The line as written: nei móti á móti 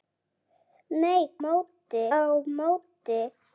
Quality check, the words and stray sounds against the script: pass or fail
pass